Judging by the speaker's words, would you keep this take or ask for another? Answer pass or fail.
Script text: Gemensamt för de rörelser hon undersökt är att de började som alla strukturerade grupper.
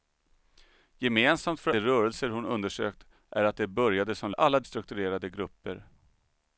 pass